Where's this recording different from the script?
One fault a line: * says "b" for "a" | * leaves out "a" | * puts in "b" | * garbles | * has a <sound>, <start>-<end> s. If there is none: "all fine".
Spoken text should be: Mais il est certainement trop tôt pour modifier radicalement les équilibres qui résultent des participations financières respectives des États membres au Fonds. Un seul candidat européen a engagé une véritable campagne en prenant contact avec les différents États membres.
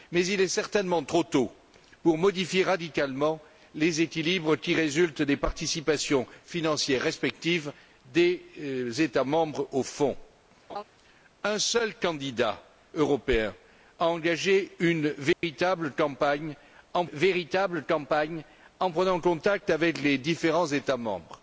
* has a laugh, 10.7-10.8 s
* has a dropout, 15.3-15.4 s
* puts in "véritable campagne en"